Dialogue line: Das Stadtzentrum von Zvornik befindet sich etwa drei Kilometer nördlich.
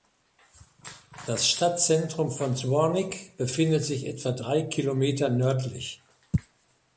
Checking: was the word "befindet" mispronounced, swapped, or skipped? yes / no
no